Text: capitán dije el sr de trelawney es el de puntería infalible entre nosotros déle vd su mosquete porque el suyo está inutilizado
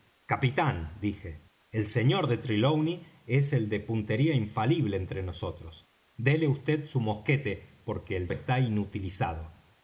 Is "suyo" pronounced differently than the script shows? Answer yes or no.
yes